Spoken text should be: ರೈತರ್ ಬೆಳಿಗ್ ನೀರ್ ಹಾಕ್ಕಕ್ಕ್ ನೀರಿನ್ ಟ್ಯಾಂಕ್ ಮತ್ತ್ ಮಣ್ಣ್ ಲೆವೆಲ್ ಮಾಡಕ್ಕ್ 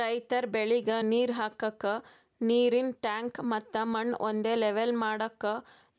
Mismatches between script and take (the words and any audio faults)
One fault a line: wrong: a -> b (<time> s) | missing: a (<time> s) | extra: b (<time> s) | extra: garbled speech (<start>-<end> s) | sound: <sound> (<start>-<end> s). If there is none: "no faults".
extra: ಒಂದೇ (4.2 s)